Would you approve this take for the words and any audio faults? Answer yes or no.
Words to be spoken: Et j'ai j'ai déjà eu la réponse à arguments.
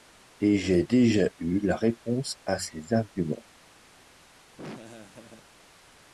no